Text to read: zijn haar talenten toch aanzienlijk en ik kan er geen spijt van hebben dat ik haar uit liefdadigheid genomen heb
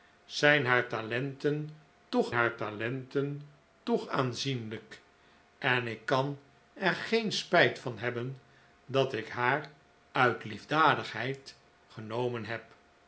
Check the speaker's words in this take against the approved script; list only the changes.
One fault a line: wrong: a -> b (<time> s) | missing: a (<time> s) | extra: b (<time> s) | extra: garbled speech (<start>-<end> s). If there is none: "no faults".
extra: haar talenten toch (2.3 s)